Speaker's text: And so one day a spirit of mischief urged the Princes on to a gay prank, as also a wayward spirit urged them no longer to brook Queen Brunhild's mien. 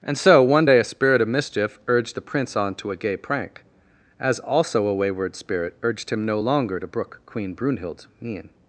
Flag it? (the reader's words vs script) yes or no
yes